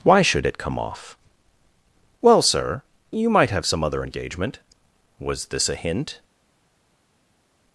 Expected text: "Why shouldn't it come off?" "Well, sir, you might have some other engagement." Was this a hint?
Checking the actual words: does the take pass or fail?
fail